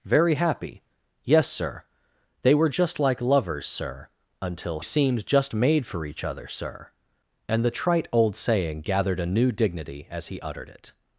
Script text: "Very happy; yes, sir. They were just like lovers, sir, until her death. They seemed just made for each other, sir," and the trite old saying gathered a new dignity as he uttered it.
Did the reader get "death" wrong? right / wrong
wrong